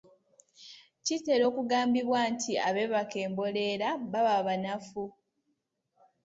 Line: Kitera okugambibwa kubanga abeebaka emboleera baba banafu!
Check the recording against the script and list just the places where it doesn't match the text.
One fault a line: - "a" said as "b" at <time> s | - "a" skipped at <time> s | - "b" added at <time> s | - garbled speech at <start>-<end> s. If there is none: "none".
- "kubanga" said as "nti" at 2.3 s